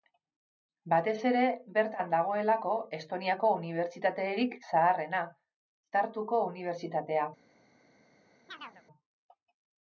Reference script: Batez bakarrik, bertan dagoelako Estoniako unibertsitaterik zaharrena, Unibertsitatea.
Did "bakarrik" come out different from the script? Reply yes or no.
yes